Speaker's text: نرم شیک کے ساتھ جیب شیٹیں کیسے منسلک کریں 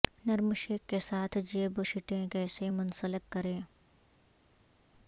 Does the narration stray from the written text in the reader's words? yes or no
no